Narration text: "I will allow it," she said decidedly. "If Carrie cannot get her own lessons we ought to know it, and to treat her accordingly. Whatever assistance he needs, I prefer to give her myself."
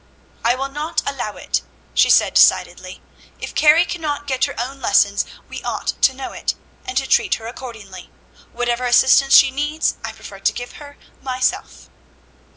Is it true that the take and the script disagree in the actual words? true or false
true